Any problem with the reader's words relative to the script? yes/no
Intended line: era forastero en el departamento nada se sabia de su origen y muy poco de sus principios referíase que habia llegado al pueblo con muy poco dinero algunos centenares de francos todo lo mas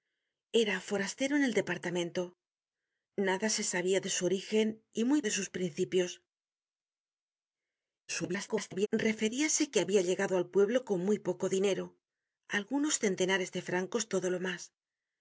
yes